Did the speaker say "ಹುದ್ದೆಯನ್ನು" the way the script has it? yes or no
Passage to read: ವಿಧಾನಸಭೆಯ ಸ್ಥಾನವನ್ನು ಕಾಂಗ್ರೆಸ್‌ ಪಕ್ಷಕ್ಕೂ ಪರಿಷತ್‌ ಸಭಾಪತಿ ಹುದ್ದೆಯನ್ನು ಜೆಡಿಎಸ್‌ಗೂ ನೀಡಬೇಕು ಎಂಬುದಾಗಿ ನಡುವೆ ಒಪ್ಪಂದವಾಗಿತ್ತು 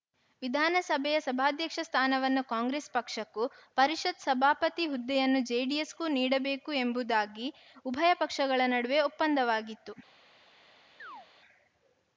yes